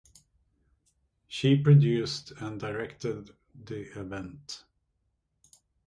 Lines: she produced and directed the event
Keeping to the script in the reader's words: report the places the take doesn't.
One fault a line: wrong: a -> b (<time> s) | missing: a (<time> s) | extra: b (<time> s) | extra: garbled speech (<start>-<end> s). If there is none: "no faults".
no faults